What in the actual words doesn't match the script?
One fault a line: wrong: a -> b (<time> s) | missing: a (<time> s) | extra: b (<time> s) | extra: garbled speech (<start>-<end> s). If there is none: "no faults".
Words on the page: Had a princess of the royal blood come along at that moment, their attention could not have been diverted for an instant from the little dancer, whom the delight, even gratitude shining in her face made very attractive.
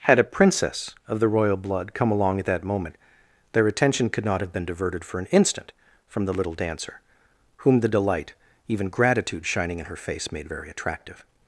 no faults